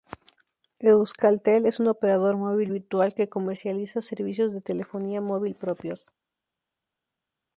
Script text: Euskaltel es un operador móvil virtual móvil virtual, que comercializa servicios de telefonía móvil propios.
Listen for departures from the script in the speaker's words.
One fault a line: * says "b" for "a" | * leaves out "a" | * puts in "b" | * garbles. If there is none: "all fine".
* leaves out "móvil virtual"